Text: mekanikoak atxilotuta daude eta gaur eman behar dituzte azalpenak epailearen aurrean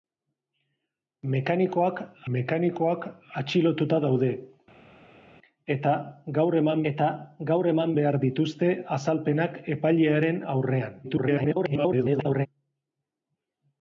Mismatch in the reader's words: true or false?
true